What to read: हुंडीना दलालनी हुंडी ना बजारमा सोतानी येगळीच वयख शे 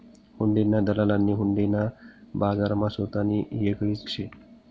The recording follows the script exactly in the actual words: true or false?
false